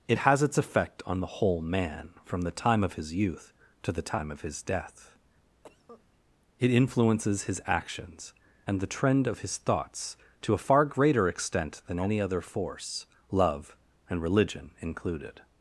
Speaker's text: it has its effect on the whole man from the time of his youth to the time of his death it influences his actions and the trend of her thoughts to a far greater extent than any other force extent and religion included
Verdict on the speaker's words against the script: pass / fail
fail